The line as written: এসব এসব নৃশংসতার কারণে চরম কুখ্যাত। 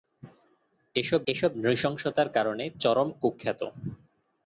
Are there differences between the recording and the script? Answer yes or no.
no